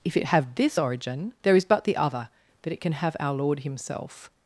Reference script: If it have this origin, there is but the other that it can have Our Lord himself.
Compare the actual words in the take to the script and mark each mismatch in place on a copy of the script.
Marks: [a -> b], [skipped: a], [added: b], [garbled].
If it have this origin, there is but the other that it can have Our Lord himself.